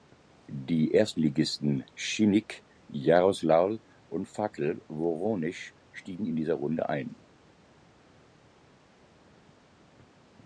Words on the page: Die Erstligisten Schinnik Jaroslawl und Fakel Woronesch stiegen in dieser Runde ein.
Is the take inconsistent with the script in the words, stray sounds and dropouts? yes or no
no